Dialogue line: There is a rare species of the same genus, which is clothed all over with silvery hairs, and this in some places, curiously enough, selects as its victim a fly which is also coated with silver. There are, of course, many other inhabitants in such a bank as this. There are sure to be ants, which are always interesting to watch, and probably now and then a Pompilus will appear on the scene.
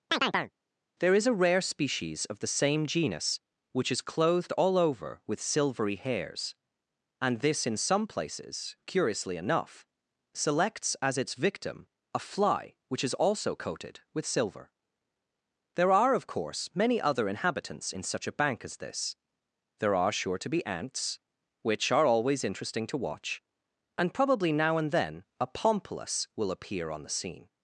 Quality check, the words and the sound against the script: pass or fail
fail